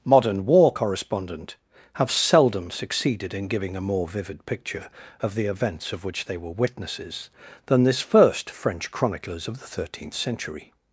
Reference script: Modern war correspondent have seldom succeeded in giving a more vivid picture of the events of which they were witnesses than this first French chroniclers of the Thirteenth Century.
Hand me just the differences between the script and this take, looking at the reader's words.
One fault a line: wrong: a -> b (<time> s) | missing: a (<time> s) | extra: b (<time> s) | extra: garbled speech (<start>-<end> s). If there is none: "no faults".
no faults